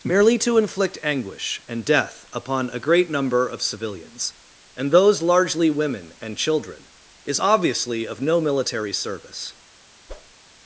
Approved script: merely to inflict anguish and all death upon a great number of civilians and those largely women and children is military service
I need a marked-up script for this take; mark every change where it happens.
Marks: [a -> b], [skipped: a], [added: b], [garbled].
merely to inflict anguish and [skipped: all] death upon a great number of civilians and those largely women and children is [added: obviously of no] military service